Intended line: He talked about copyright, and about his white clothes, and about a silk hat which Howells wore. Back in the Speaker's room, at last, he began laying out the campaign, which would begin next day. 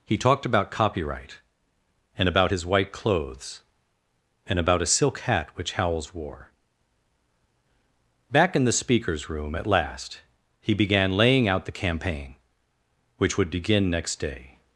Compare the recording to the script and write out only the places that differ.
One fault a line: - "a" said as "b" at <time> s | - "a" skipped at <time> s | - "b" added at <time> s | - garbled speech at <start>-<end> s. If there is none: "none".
none